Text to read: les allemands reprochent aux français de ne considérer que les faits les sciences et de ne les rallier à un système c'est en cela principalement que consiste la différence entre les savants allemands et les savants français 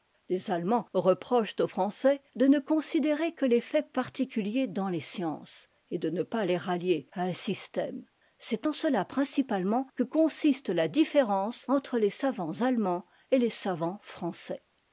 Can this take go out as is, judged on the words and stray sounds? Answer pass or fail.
fail